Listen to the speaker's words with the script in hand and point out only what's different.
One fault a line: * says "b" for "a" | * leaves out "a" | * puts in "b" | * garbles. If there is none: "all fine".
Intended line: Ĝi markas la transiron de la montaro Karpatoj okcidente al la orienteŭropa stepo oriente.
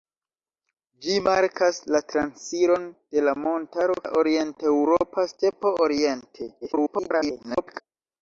* leaves out "Karpatoj okcidente al"
* garbles